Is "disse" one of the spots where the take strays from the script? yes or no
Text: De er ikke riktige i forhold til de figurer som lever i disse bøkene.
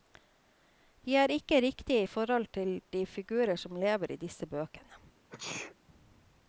no